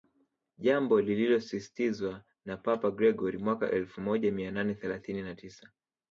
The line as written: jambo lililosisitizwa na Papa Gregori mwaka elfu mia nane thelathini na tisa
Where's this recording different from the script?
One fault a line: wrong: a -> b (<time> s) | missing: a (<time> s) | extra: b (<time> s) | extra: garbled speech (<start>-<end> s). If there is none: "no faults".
extra: moja (4.0 s)